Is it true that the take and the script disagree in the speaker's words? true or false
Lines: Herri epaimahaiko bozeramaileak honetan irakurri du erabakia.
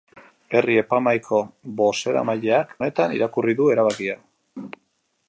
false